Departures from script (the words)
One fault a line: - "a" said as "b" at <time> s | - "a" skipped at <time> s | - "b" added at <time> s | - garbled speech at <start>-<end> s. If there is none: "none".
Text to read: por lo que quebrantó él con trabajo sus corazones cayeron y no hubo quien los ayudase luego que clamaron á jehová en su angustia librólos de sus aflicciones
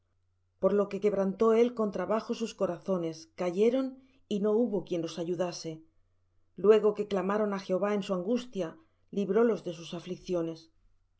none